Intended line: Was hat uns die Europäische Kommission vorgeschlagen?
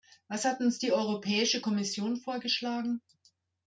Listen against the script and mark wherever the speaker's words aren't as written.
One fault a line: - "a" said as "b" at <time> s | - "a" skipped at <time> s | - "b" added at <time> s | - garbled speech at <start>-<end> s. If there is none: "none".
none